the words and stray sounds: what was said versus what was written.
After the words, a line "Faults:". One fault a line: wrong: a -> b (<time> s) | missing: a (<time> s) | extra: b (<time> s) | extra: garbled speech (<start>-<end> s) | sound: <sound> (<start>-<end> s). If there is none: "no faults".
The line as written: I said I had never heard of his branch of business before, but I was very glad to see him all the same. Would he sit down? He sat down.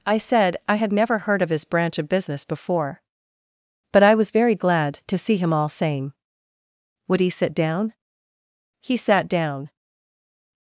I said I had never heard of his branch of business before, but I was very glad to see him all same. Would he sit down? He sat down.
Faults:
missing: the (5.7 s)